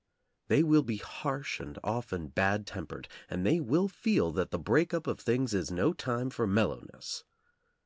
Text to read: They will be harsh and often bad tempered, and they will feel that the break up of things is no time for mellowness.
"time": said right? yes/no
yes